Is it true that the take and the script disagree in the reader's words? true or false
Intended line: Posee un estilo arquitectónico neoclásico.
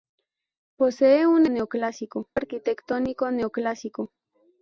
true